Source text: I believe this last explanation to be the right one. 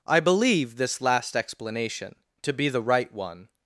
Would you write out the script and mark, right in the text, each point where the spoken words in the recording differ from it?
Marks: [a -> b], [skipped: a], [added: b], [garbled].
I believe this last explanation to be the right one.